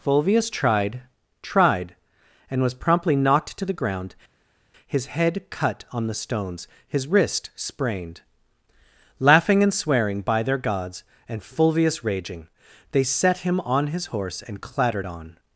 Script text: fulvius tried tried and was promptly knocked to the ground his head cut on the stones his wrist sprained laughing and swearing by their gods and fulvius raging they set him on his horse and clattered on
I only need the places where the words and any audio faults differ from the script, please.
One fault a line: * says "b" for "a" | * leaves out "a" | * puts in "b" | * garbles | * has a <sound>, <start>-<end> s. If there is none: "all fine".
all fine